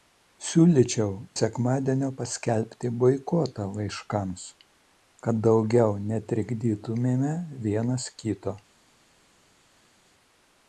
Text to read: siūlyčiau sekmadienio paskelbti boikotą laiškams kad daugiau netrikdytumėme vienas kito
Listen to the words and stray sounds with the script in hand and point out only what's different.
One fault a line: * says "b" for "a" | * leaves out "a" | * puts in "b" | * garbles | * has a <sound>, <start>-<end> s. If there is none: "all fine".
all fine